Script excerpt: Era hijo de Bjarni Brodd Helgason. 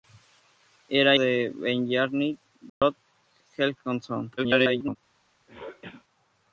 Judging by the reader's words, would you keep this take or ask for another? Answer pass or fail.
fail